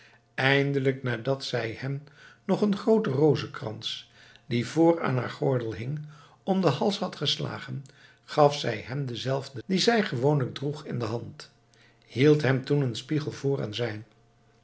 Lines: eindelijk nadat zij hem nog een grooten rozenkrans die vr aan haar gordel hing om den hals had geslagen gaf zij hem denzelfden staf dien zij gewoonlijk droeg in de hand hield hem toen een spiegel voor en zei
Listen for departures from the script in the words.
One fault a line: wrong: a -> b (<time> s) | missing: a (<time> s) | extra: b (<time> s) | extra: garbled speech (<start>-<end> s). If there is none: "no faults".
missing: staf (9.6 s)